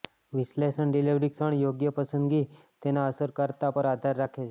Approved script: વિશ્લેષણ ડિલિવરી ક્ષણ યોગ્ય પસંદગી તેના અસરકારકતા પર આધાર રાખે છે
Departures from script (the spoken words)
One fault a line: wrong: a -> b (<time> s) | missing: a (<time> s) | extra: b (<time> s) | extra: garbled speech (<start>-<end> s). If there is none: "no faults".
no faults